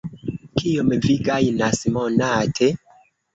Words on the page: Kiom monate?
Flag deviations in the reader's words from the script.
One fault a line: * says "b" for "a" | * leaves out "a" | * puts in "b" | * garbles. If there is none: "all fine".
* puts in "vi gajnas"